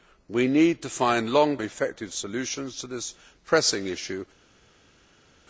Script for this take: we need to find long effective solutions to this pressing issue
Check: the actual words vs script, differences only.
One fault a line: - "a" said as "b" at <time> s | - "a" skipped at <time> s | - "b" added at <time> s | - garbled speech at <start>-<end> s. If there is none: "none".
none